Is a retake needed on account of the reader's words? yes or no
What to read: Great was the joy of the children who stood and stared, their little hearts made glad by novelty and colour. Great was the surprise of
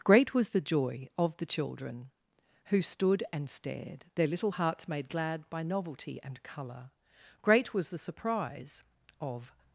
no